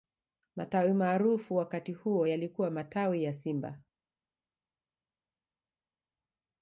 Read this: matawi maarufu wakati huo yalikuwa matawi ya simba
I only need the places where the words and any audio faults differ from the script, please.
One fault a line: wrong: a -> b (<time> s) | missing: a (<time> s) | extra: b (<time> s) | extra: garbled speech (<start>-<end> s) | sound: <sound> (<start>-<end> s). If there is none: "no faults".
no faults